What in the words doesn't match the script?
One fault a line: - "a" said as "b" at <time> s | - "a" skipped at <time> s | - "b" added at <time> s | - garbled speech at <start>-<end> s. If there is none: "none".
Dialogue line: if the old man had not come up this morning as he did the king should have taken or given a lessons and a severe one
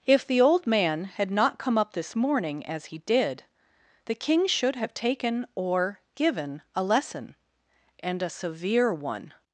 - "lessons" said as "lesson" at 6.8 s